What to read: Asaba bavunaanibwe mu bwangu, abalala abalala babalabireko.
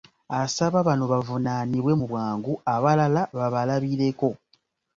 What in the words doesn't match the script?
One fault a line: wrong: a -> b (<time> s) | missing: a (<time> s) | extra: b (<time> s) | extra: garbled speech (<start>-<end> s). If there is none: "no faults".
extra: bano (0.9 s)
missing: abalala (3.2 s)